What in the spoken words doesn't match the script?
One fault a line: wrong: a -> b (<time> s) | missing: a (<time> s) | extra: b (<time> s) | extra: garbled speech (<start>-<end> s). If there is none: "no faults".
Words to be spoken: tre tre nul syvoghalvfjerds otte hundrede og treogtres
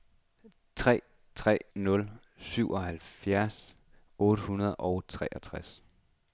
no faults